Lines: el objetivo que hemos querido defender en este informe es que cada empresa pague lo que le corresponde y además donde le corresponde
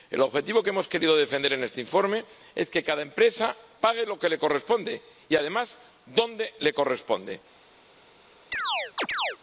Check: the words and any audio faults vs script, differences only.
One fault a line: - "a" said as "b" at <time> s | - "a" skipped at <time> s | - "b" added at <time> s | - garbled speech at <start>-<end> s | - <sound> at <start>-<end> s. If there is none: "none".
- chirp at 8.5-9.4 s